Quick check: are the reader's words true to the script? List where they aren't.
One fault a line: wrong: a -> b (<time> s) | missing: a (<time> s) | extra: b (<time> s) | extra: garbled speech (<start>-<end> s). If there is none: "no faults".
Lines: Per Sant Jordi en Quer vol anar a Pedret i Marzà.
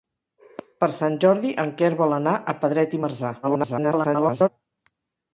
extra: garbled speech (3.4-4.5 s)